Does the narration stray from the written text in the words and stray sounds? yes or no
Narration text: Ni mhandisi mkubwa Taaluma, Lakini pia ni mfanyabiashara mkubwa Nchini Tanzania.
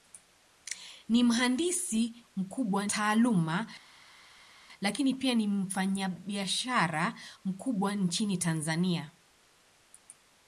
no